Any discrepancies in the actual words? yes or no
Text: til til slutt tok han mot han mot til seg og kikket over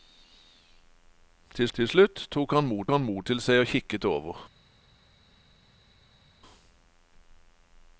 no